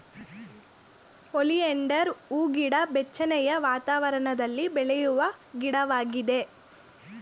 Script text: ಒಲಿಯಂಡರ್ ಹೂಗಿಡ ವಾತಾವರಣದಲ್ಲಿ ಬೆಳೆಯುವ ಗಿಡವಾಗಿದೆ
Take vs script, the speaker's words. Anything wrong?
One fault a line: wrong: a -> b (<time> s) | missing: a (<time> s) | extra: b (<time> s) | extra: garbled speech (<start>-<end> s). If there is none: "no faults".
extra: ಬೆಚ್ಚನೆಯ (2.9 s)